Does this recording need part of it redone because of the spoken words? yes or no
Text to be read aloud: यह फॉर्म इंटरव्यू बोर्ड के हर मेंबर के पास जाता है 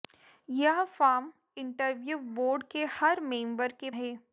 yes